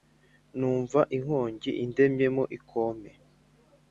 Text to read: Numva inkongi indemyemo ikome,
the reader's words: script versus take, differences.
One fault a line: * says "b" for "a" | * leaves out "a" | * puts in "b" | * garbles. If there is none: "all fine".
all fine